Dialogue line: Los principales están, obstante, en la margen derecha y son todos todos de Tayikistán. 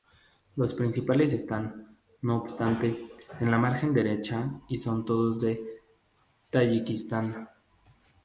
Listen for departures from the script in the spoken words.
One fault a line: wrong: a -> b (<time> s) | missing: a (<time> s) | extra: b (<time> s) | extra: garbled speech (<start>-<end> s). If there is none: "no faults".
extra: no (2.2 s)
missing: todos (5.4 s)